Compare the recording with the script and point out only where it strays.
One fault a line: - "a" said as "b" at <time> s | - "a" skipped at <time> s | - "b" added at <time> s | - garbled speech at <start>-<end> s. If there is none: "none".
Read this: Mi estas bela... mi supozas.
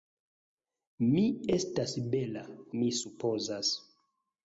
none